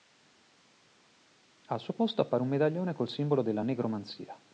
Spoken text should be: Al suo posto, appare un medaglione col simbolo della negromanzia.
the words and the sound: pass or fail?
pass